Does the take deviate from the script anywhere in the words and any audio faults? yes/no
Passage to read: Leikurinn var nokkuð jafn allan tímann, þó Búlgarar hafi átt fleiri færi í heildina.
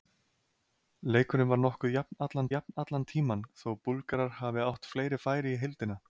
yes